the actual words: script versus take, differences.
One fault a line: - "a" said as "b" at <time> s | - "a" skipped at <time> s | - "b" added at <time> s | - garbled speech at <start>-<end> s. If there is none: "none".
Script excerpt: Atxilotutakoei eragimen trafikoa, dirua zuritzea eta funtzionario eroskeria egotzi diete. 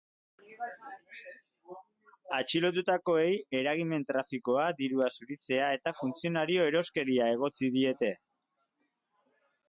none